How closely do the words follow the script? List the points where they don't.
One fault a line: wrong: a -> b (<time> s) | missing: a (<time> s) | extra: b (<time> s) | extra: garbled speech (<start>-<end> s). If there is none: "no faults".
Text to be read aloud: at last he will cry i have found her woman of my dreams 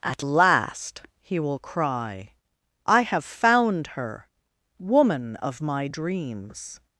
no faults